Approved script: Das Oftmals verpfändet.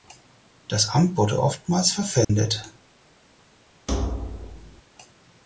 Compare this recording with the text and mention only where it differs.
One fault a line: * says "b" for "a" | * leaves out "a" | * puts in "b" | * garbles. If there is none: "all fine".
* puts in "Amt wurde"